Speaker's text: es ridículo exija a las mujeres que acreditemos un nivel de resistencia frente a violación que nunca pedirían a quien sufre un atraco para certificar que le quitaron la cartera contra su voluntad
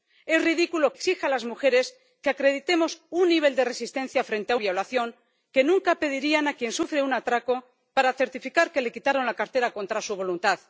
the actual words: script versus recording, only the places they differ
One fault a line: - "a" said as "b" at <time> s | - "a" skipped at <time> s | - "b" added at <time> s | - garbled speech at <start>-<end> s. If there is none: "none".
none